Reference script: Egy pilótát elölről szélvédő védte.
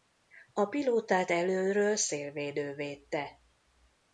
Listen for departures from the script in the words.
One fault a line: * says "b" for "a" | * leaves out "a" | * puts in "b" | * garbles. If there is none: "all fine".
* says "A" for "Egy"